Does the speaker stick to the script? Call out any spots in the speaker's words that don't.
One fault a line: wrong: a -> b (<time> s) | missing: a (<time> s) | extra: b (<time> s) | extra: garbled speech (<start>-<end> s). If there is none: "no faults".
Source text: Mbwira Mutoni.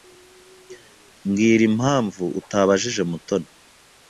extra: impamvu utabajije (1.7 s)